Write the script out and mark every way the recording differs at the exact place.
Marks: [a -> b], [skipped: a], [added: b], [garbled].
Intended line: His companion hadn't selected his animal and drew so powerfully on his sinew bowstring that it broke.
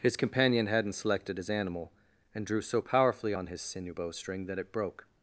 His companion hadn't selected his animal and drew so powerfully on his sinew bowstring that it broke.